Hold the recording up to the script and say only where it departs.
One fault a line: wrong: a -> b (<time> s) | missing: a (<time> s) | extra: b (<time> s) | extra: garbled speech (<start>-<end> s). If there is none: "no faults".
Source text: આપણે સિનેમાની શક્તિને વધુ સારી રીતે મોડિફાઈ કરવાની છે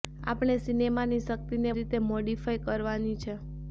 missing: વધુ સારી (1.8 s)